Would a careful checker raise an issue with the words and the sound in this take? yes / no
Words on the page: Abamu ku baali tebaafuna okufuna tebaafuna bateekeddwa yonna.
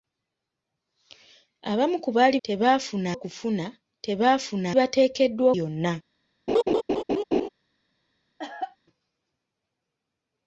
yes